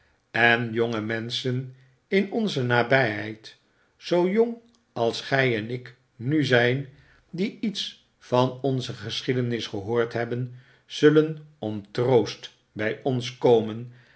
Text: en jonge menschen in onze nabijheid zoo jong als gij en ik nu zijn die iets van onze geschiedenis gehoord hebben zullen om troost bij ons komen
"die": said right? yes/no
yes